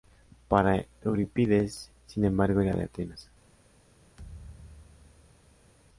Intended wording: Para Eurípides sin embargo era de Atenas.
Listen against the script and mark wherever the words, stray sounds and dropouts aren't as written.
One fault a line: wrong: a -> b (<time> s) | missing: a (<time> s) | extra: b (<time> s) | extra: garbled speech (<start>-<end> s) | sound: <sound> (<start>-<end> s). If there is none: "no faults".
sound: thud (4.2-5.7 s)